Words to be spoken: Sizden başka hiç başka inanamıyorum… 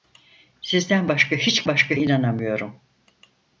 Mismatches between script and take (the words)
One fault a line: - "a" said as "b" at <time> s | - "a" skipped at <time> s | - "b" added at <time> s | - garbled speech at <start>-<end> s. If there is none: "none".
none